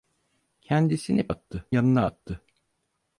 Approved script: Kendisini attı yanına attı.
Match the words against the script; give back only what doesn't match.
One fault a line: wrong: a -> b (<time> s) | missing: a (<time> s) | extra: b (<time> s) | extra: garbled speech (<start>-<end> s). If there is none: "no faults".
no faults